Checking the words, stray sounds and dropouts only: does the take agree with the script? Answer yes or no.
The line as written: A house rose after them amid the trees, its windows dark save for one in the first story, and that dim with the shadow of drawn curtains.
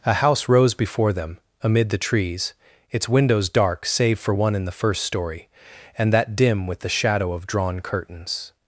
no